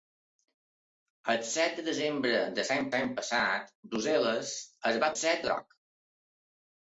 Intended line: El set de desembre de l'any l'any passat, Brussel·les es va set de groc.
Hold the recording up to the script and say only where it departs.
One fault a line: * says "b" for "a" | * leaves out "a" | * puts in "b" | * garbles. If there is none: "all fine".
all fine